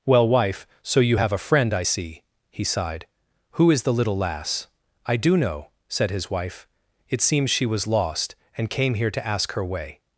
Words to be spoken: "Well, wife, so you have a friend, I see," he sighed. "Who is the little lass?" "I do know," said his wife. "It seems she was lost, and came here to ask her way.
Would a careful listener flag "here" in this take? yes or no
no